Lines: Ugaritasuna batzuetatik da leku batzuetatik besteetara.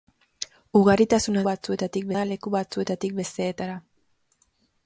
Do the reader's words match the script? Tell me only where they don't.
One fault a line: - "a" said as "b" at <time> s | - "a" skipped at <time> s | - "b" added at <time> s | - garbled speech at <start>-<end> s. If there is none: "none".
none